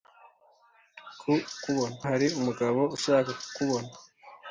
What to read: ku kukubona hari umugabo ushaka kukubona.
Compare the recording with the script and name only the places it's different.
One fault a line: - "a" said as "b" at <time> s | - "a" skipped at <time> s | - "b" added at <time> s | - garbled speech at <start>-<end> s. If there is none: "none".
none